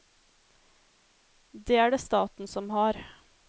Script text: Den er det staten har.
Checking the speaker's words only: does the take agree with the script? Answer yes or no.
no